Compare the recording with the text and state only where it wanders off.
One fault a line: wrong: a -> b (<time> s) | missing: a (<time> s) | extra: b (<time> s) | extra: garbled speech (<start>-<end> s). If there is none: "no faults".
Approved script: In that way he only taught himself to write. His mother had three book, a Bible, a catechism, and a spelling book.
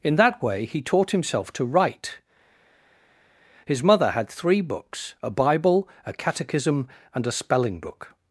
missing: only (0.8 s)
wrong: book -> books (4.6 s)